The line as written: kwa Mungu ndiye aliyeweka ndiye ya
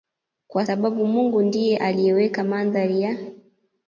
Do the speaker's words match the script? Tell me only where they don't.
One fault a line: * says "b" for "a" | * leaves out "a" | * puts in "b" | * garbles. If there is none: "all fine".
* puts in "sababu"
* says "mandhari" for "ndiye"